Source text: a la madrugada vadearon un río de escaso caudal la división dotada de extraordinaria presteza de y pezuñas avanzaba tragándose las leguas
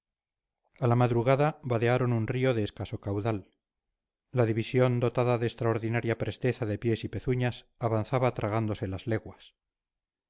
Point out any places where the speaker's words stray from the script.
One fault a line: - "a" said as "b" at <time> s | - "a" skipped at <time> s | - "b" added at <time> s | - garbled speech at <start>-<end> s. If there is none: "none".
- "pies" added at 6.8 s